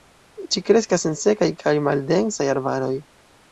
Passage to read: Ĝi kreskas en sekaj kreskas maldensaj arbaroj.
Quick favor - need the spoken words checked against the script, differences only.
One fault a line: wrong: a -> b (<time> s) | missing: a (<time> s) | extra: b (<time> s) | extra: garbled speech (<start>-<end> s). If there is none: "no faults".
wrong: kreskas -> kaj (1.6 s)